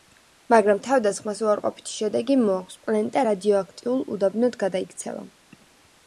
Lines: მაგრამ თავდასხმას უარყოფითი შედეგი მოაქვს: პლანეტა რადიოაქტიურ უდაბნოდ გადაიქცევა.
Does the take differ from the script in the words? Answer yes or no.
no